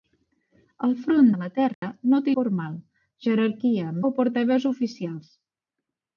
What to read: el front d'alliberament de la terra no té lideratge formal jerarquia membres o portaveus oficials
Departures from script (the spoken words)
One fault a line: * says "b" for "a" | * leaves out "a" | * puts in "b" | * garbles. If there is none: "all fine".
* leaves out "d'alliberament"
* leaves out "lideratge"
* leaves out "membres"